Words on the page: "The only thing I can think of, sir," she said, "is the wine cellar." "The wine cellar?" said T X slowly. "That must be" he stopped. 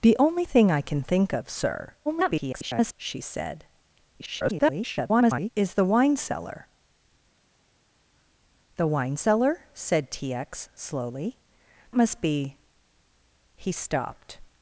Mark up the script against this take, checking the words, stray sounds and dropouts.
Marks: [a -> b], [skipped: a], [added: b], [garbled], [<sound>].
"The only thing I can think of, sir," [garbled] she said, [garbled] "is the wine cellar." "The wine cellar?" said T X slowly. [skipped: "That] must be" he stopped.